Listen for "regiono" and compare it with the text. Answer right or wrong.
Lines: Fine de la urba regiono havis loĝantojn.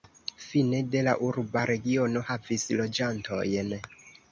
right